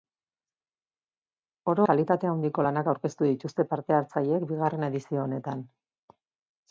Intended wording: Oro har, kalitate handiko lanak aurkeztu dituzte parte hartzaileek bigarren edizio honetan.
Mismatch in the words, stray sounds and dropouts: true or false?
true